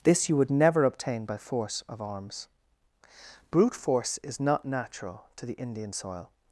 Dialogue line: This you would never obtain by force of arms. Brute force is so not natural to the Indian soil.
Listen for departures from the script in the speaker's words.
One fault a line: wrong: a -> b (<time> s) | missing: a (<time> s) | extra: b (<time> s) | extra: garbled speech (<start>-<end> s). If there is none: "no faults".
missing: so (4.4 s)